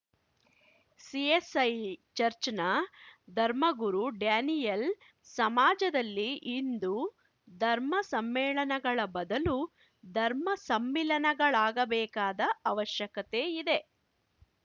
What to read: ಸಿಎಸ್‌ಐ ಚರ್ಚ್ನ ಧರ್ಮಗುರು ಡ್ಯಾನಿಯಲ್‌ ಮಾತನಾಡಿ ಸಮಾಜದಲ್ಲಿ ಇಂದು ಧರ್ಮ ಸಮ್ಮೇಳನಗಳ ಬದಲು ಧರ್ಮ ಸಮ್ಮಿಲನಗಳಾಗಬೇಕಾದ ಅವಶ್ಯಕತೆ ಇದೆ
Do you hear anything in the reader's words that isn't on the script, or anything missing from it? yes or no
yes